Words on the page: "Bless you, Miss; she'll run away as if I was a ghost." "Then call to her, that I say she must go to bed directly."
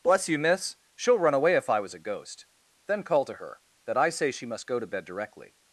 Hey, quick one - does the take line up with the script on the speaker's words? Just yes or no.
no